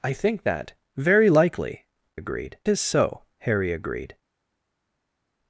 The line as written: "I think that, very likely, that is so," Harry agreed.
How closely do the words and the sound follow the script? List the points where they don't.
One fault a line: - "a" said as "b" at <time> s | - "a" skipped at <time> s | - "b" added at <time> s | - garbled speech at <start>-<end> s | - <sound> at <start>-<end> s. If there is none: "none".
- "that" said as "agreed" at 2.1 s